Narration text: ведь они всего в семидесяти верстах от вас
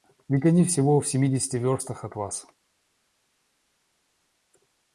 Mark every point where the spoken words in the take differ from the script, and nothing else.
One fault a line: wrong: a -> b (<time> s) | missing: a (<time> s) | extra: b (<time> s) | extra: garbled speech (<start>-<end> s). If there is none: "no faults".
no faults